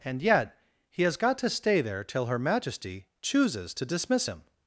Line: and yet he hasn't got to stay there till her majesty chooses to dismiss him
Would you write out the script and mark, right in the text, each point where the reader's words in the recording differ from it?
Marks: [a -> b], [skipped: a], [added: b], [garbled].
and yet he [hasn't -> has] got to stay there till her majesty chooses to dismiss him